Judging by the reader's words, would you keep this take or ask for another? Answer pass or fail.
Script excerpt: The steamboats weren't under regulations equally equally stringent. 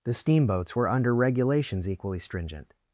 fail